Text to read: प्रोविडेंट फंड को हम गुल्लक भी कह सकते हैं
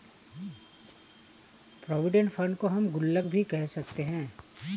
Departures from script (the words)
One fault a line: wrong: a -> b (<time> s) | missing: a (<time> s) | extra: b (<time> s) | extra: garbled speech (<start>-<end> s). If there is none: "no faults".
no faults